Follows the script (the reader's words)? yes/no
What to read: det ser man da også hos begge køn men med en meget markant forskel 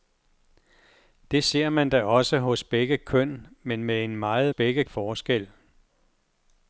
no